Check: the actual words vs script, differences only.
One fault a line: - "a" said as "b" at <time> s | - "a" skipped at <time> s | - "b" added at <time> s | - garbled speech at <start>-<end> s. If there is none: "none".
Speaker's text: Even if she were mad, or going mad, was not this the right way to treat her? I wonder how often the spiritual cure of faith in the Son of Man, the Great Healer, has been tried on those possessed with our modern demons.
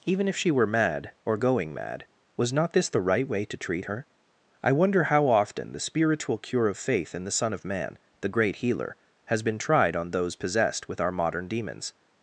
none